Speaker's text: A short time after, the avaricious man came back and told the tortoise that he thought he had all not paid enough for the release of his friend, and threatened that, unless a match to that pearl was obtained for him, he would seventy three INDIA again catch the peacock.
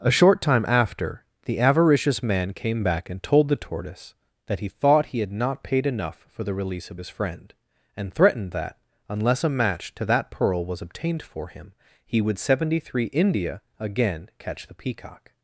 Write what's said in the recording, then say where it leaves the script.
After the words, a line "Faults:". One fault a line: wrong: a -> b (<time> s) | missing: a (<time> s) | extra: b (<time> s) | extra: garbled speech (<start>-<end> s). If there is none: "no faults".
A short time after, the avaricious man came back and told the tortoise that he thought he had not paid enough for the release of his friend, and threatened that, unless a match to that pearl was obtained for him, he would seventy three INDIA again catch the peacock.
Faults:
missing: all (5.3 s)